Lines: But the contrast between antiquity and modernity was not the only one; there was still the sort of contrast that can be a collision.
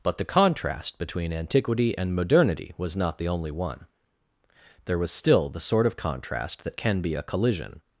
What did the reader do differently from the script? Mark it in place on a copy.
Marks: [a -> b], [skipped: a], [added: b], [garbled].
But the contrast between antiquity and modernity was not the only one; there was still the sort of contrast that can be a collision.